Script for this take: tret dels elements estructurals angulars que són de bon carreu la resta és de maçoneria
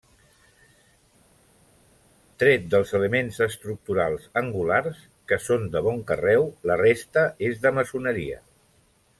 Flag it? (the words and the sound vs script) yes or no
no